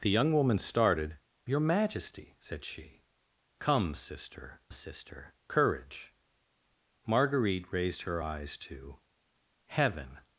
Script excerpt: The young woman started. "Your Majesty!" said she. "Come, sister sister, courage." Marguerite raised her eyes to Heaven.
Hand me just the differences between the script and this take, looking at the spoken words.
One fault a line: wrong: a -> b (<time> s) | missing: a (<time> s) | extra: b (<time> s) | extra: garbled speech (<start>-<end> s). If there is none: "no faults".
no faults